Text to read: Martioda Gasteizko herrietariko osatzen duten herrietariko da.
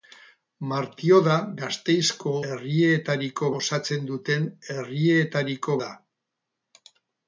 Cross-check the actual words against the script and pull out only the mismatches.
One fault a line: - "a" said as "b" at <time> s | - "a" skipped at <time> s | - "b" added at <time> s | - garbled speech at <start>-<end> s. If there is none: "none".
none